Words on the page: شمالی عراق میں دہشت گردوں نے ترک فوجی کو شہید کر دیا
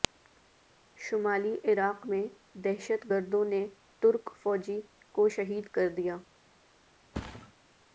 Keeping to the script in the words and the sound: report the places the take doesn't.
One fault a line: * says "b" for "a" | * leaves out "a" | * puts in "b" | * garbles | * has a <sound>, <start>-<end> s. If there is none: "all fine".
* has a thud, 7.1-7.5 s